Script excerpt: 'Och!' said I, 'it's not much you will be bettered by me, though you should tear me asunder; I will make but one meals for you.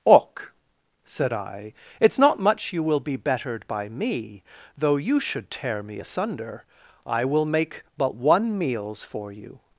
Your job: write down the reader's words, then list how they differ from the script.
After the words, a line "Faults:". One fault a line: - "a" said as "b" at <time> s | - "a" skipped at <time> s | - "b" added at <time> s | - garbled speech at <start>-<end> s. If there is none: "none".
'Och!' said I, 'it's not much you will be bettered by me, though you should tear me asunder; I will make but one meals for you.
Faults:
none